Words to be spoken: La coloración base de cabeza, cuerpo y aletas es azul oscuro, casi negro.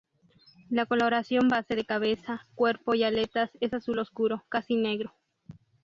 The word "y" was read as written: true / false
true